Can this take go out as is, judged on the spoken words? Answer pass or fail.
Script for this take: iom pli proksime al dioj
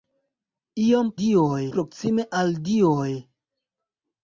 fail